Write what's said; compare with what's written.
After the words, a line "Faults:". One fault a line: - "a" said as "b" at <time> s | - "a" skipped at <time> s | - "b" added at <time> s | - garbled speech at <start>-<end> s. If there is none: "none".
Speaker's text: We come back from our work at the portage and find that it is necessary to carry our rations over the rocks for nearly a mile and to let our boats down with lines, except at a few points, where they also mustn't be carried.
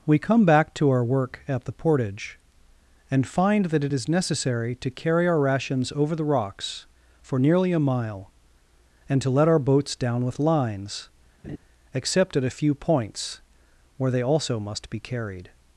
We come back to our work at the portage and find that it is necessary to carry our rations over the rocks for nearly a mile and to let our boats down with lines, except at a few points, where they also must be carried.
Faults:
- "from" said as "to" at 0.8 s
- "mustn't" said as "must" at 14.6 s